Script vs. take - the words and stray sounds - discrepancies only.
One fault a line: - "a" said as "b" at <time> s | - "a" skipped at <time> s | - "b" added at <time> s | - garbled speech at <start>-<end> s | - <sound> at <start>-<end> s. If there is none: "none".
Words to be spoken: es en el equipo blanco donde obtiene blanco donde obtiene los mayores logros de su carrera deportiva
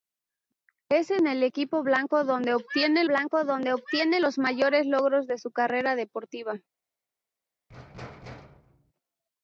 - thud at 7.7-8.9 s